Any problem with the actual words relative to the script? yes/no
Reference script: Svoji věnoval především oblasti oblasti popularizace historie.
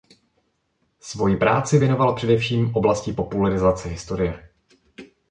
yes